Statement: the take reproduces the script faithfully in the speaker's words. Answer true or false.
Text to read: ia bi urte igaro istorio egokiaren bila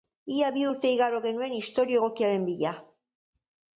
false